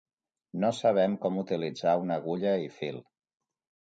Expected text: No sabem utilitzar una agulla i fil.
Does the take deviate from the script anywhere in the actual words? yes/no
yes